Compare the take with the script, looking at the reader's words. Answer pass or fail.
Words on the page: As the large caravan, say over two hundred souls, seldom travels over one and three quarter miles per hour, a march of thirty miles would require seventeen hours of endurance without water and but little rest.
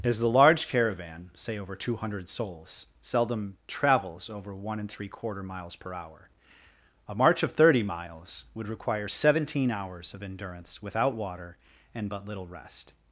pass